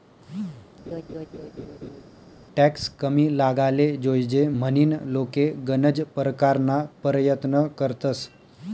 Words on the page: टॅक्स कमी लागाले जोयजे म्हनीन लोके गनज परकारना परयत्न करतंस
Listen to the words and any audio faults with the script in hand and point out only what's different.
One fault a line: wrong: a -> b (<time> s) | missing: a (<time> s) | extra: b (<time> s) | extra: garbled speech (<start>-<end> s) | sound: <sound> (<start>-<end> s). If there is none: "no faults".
sound: laugh (0.9-2.0 s)